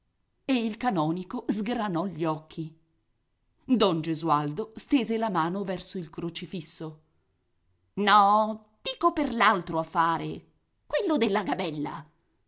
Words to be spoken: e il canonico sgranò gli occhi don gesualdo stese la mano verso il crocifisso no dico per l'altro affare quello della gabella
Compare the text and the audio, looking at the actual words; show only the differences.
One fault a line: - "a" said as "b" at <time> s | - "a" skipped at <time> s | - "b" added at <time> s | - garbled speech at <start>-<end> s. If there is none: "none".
none